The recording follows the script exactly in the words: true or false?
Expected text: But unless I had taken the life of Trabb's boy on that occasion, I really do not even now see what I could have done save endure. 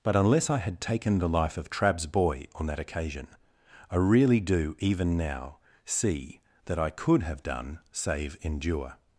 false